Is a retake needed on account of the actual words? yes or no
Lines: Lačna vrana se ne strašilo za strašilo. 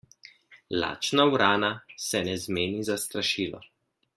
yes